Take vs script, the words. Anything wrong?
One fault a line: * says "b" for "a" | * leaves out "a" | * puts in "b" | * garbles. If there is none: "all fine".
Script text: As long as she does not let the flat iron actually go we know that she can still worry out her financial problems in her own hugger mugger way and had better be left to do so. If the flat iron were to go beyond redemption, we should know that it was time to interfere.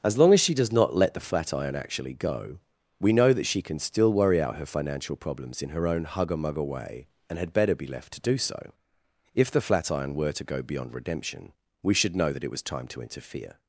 all fine